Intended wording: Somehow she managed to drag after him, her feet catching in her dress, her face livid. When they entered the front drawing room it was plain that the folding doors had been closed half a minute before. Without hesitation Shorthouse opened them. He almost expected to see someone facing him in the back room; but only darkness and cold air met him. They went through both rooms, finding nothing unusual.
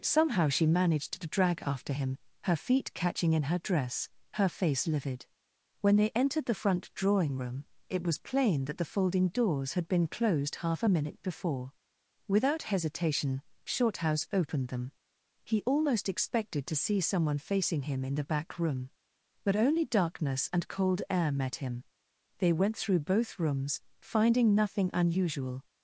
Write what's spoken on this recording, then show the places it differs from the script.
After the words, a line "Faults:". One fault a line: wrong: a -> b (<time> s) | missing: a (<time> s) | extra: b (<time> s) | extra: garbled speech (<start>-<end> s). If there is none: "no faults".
Somehow she managed to drag after him, her feet catching in her dress, her face livid. When they entered the front drawing room it was plain that the folding doors had been closed half a minute before. Without hesitation Shorthouse opened them. He almost expected to see someone facing him in the back room; but only darkness and cold air met him. They went through both rooms, finding nothing unusual.
Faults:
no faults